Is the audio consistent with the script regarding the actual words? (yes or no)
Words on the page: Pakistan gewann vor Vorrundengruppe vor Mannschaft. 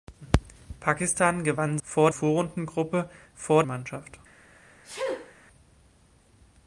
yes